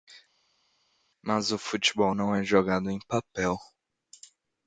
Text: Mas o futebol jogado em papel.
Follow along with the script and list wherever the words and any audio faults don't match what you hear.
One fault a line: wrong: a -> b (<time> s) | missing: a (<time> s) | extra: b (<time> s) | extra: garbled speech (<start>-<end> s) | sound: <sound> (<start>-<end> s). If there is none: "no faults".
extra: não é (2.1 s)